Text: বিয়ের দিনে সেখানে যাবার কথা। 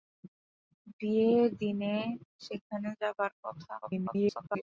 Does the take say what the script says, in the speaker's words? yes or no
no